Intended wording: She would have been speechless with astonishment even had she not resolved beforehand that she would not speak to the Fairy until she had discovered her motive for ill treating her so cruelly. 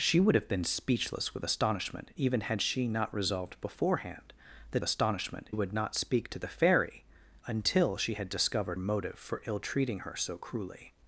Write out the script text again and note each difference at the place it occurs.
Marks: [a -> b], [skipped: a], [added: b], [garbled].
She would have been speechless with astonishment even had she not resolved beforehand that [she -> astonishment] would not speak to the Fairy until she had discovered [skipped: her] motive for ill treating her so cruelly.